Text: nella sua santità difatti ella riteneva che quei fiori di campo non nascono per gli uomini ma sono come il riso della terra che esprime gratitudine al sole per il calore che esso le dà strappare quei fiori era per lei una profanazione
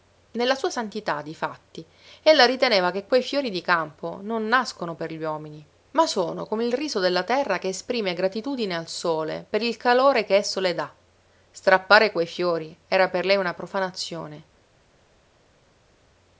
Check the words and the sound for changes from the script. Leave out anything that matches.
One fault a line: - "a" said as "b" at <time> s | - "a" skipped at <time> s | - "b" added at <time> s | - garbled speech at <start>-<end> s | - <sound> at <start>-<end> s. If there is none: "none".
none